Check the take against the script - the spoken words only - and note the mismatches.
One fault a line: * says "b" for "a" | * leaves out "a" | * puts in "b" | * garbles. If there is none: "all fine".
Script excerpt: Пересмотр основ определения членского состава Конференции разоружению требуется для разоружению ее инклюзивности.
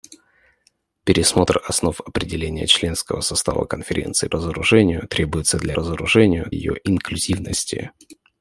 all fine